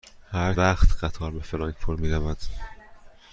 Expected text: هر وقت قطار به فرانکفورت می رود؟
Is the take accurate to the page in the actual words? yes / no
yes